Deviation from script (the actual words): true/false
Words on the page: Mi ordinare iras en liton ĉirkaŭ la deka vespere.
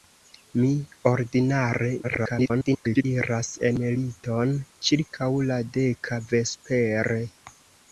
true